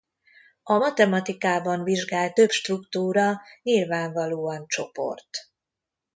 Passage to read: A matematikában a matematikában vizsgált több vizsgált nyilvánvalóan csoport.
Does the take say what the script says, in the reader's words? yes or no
no